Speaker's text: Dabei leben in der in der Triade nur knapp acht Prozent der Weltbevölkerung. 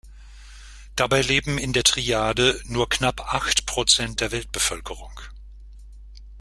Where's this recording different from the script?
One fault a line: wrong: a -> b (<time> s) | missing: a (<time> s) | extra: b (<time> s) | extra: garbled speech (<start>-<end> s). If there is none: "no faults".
missing: in der (1.9 s)